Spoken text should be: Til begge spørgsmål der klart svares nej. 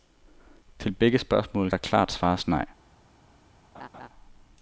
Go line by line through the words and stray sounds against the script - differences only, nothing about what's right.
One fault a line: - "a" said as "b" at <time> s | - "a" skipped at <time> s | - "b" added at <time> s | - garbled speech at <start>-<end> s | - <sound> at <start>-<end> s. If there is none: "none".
- laugh at 3.7-4.1 s